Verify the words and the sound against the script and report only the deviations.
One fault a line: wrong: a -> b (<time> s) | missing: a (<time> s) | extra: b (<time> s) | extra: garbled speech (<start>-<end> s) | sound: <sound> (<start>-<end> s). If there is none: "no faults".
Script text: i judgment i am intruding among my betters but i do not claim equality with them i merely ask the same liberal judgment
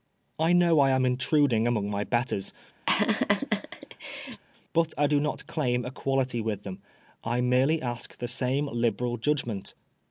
wrong: judgment -> know (0.5 s)
sound: laugh (2.9-4.4 s)